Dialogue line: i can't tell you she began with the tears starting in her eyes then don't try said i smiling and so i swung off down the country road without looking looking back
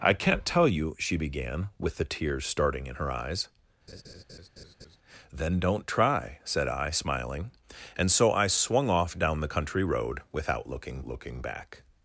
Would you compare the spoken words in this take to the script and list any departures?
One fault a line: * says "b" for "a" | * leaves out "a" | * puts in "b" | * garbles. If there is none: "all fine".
all fine